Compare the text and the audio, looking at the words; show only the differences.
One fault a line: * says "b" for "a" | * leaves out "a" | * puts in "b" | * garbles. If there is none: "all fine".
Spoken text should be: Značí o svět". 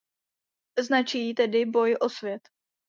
* puts in "tedy boj"